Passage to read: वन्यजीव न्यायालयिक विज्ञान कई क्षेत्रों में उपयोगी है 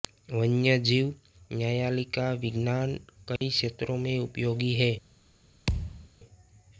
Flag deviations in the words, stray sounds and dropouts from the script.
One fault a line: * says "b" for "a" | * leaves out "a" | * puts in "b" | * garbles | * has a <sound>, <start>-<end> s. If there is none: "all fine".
* has a dropout, 3.4-3.4 s
* has a thud, 5.7-6.1 s